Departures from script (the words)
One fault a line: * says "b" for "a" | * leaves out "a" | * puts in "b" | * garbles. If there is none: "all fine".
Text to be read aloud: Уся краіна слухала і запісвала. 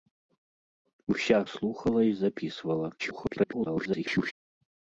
* leaves out "краіна"
* garbles